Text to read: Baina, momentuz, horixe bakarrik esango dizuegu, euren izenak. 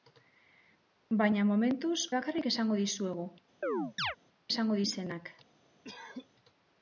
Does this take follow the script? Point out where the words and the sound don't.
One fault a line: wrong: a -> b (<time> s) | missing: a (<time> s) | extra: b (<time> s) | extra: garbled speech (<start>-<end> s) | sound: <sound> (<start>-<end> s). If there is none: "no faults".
missing: horixe (2.0 s)
sound: chirp (3.6-4.2 s)
wrong: euren -> esango (4.5 s)
sound: cough (5.8-6.3 s)